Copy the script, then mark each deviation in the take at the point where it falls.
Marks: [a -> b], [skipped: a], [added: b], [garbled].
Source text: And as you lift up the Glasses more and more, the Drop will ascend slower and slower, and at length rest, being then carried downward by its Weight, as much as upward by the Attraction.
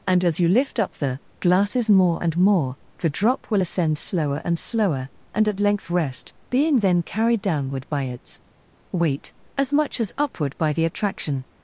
And as you lift up the Glasses more and more, the Drop will ascend slower and slower, and at length rest, being then carried downward by its Weight, as much as upward by the Attraction.